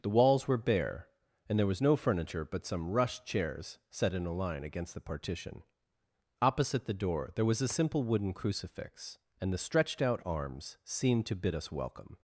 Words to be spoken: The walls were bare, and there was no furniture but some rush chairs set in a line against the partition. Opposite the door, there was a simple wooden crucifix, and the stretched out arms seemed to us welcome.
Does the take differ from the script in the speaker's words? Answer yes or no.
yes